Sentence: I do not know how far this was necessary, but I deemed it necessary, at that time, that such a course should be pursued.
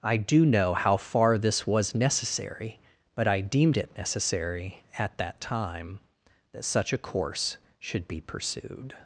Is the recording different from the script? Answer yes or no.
yes